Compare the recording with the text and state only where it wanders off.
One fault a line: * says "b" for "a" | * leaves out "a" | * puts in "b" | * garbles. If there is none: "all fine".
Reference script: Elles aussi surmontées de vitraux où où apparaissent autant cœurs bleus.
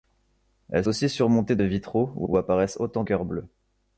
all fine